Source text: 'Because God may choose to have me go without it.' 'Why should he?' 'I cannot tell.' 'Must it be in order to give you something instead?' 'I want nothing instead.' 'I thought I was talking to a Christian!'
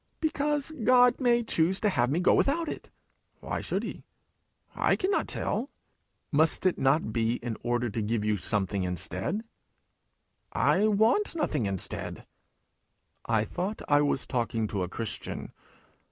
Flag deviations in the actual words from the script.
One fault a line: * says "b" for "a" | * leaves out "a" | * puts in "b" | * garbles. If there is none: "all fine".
* puts in "not"